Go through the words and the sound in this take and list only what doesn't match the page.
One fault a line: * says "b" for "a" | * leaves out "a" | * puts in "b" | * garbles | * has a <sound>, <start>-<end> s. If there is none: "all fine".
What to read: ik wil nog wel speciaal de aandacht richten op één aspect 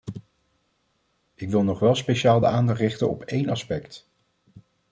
all fine